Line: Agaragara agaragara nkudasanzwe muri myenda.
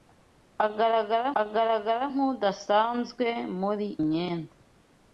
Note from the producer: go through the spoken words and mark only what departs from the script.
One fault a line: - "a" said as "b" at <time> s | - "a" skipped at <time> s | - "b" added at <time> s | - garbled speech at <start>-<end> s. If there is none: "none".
none